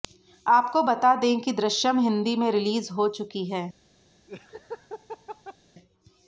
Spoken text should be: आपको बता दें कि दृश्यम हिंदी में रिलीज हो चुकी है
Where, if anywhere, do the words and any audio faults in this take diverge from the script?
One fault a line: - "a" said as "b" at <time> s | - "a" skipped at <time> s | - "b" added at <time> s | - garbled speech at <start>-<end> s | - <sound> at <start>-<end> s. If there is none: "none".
- laugh at 4.3-5.6 s